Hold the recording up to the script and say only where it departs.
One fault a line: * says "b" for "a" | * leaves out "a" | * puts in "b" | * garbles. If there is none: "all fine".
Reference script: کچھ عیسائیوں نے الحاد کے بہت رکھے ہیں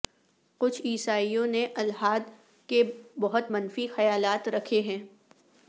* puts in "منفی خیالات"